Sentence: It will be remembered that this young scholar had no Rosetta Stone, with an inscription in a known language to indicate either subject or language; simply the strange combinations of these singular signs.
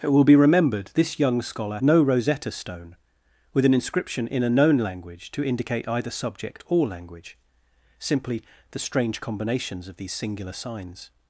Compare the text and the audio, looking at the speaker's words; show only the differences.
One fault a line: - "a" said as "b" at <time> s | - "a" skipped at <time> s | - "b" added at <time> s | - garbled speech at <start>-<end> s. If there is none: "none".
- "that" skipped at 0.9 s
- "had" skipped at 1.8 s